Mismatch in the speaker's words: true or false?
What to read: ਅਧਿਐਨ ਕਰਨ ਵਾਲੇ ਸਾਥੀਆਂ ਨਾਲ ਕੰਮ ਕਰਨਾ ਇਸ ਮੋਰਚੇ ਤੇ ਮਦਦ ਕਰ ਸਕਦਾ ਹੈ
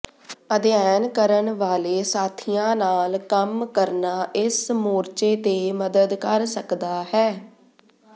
false